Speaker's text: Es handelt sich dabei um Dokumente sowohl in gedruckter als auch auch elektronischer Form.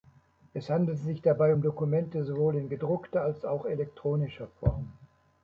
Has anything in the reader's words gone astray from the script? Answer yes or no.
yes